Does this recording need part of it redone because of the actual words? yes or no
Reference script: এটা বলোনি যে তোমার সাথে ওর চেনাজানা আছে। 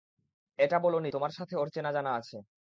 yes